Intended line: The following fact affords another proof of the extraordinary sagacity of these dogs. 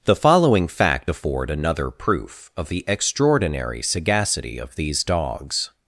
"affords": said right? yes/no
no